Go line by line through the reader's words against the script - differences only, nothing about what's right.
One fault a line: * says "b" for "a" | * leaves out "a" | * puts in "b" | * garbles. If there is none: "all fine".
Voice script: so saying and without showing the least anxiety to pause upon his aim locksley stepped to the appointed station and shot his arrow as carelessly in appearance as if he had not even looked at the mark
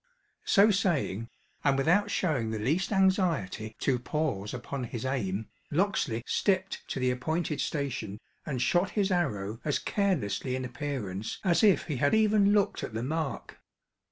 * leaves out "not"